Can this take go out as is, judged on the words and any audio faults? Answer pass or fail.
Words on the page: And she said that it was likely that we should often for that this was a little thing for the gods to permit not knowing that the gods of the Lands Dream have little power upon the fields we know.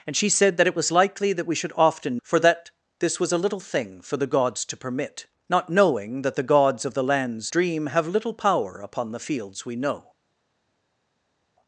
pass